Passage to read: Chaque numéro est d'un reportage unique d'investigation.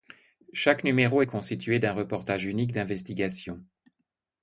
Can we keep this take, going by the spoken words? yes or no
no